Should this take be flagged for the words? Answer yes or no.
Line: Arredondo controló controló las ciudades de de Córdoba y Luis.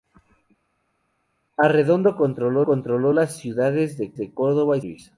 no